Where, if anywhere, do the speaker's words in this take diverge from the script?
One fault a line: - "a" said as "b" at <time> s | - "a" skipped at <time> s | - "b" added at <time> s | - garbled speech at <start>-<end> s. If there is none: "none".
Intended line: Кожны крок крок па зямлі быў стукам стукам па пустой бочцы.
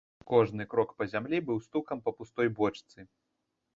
- "крок" skipped at 0.9 s
- "стукам" skipped at 2.0 s